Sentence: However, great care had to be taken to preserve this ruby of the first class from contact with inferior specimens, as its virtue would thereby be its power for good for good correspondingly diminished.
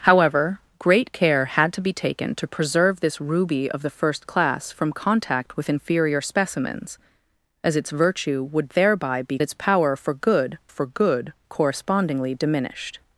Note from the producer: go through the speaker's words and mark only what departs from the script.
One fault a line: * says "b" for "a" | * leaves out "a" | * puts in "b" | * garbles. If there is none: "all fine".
all fine